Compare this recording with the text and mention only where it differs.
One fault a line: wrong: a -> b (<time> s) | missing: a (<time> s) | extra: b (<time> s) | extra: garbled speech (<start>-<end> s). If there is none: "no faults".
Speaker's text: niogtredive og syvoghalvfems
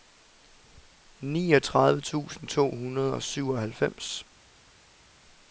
extra: tusind to hundrede (2.0 s)